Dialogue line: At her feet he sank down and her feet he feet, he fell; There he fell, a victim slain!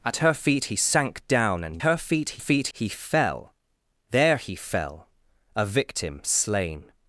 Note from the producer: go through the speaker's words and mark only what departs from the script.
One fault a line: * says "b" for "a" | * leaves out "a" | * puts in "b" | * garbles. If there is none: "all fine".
all fine